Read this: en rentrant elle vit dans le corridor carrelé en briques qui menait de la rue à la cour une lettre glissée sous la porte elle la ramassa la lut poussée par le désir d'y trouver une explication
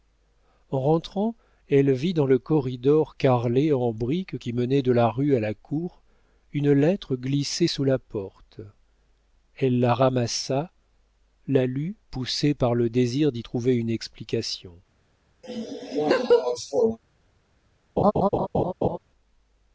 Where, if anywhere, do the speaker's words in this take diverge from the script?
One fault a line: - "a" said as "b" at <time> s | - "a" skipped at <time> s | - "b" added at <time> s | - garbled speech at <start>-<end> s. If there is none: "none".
none